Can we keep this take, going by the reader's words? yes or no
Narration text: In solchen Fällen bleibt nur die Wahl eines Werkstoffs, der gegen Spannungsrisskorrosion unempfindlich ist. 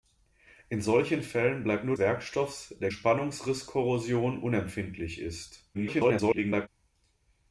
no